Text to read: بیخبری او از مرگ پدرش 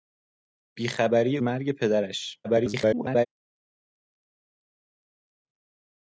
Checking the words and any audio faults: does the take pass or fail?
fail